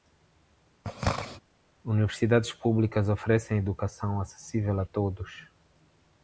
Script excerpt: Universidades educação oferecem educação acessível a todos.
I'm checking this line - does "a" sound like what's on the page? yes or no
yes